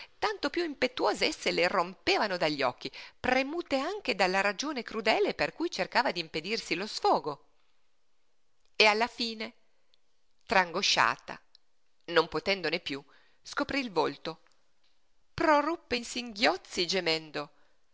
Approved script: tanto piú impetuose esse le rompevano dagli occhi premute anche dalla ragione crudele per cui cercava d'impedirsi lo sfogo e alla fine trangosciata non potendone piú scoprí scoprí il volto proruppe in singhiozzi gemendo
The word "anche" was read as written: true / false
true